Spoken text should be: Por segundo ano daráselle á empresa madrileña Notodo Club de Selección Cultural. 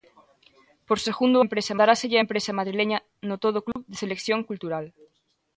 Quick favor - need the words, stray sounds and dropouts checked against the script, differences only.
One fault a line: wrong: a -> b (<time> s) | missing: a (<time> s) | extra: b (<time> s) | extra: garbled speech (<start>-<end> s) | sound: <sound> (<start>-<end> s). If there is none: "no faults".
wrong: ano -> empresa (1.4 s)
sound: dropout (3.7-3.8 s)